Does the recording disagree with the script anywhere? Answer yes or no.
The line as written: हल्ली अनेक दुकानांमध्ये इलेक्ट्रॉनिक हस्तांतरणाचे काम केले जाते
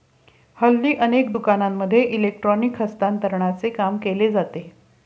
no